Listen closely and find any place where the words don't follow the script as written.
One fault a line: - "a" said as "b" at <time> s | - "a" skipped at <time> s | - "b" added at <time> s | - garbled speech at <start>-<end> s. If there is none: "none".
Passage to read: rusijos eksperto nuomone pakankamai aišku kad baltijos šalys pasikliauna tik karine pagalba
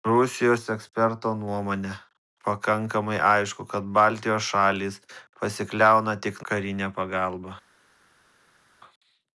none